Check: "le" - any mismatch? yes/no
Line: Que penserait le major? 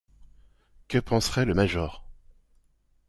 no